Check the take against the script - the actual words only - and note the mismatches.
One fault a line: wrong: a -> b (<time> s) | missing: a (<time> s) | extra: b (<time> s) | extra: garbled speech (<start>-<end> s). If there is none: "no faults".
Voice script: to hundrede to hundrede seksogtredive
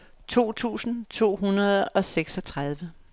wrong: hundrede -> tusind (0.5 s)
extra: og (1.9 s)